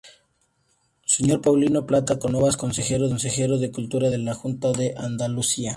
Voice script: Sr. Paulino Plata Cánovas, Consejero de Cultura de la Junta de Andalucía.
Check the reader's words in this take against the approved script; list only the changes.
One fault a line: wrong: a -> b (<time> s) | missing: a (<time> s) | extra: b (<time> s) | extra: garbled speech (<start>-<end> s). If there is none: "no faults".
no faults